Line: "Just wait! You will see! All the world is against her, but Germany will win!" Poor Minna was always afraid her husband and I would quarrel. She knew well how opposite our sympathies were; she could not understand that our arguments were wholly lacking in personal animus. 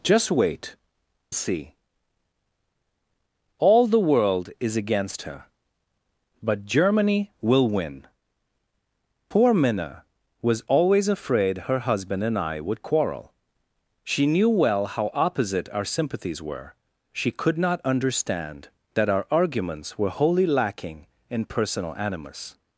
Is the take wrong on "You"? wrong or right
wrong